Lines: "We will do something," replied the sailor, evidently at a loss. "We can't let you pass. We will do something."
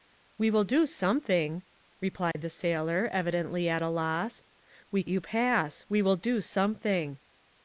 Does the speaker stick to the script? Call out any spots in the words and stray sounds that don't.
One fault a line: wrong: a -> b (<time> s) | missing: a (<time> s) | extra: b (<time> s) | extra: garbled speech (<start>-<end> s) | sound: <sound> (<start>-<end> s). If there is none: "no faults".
sound: dropout (2.3-2.4 s)
missing: can't let (5.0 s)